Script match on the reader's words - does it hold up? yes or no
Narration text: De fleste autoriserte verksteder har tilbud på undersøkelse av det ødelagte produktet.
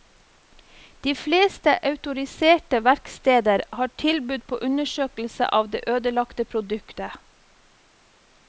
yes